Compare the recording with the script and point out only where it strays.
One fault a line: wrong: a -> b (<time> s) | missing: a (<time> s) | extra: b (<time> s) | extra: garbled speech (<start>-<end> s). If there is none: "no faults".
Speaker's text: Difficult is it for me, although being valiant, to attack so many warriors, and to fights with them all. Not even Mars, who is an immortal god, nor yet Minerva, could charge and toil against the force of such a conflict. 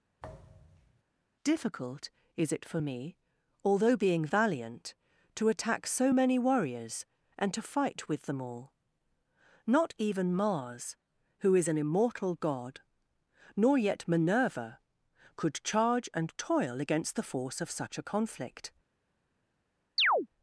wrong: fights -> fight (7.6 s)